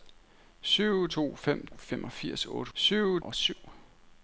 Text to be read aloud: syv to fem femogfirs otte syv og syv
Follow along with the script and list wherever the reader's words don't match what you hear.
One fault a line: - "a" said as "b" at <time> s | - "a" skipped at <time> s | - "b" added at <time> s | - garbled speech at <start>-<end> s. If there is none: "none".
none